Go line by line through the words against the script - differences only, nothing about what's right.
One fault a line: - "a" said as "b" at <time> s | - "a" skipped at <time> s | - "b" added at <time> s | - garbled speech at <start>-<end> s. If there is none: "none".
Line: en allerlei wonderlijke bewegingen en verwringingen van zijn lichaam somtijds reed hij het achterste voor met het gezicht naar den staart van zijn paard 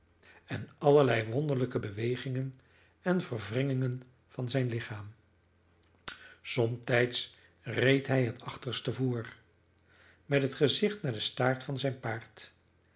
none